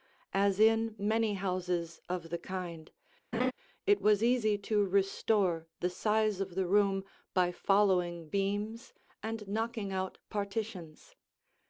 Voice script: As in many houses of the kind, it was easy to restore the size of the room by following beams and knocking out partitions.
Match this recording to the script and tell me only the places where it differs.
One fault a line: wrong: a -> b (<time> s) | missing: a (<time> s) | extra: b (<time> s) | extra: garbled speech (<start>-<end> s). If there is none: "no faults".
no faults